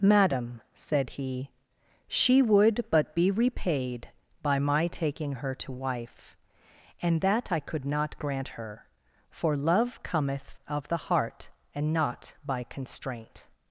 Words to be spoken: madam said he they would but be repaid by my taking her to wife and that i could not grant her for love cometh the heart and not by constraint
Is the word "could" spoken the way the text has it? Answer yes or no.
yes